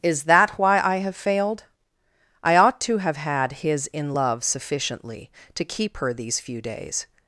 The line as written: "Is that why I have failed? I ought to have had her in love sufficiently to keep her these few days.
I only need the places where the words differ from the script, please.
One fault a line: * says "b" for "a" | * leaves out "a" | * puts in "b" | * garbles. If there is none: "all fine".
* says "his" for "her"